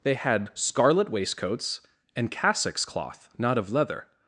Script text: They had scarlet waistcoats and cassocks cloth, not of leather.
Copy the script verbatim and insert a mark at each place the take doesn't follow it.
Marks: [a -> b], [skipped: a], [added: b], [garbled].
They had scarlet waistcoats and cassocks cloth, not of leather.